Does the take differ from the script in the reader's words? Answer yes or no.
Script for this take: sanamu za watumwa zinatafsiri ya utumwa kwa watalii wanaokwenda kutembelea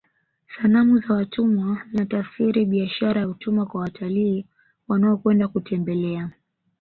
yes